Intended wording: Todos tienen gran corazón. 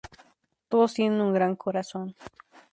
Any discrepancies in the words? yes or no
yes